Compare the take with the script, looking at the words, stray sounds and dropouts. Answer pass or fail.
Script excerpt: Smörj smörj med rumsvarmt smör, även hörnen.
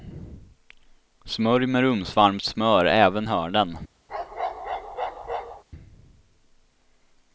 fail